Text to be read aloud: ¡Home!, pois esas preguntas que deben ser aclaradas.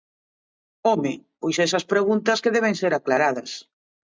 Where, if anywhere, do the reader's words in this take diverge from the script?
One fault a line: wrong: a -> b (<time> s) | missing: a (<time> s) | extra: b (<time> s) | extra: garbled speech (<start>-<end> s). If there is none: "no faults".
no faults